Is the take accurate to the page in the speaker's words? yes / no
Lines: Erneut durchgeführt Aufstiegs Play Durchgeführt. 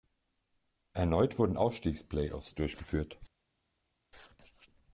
no